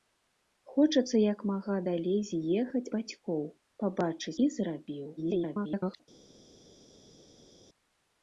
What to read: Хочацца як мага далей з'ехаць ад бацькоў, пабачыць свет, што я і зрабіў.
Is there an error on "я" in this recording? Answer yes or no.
yes